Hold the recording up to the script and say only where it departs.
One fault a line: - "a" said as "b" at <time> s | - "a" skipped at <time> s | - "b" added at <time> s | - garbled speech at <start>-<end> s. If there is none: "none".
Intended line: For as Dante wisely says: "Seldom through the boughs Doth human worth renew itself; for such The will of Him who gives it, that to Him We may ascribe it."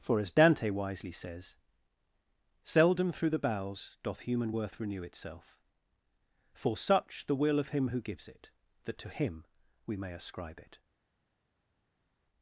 - "boughs" said as "bowels" at 3.4 s